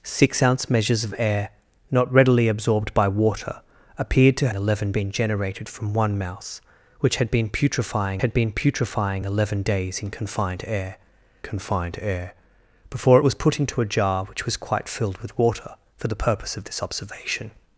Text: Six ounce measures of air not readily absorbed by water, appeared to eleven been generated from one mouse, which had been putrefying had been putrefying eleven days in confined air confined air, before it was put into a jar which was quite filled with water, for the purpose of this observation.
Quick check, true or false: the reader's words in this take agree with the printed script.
true